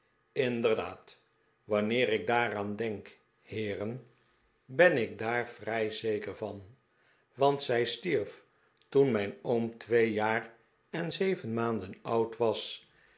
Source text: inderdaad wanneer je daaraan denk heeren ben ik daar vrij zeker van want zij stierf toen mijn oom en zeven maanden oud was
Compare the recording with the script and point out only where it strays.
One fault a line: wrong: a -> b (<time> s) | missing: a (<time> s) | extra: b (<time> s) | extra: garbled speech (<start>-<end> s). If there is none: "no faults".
wrong: je -> ik (2.1 s)
extra: twee jaar (9.8 s)